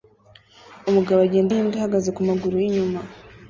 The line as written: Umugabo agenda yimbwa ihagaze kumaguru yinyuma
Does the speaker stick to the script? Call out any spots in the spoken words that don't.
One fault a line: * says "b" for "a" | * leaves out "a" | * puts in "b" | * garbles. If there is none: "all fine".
all fine